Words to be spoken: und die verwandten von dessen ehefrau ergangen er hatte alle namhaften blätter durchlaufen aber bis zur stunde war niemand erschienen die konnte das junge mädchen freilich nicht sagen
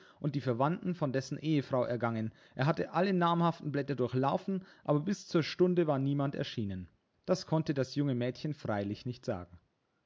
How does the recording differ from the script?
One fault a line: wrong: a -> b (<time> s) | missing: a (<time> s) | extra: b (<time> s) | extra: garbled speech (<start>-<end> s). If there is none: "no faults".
wrong: die -> das (7.2 s)